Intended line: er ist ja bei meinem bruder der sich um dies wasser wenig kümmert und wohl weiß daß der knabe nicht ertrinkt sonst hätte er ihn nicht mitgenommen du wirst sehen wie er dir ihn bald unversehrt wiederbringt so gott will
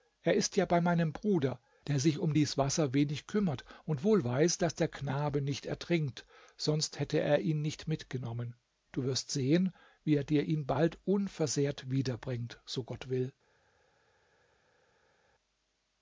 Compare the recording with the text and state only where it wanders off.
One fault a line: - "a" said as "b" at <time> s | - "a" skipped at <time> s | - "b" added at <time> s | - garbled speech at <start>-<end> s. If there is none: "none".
none